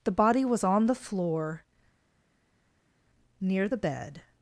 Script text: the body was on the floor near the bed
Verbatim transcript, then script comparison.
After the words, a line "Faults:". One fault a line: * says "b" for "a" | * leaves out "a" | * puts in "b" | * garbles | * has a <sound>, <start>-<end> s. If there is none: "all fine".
the body was on the floor near the bed
Faults:
all fine